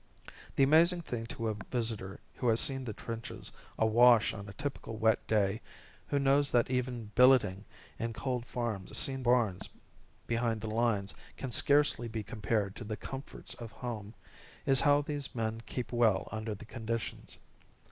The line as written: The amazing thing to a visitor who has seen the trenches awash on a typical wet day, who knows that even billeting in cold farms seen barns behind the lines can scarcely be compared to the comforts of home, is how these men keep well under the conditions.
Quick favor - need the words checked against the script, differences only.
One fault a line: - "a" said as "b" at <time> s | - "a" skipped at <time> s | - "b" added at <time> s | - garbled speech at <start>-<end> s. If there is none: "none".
none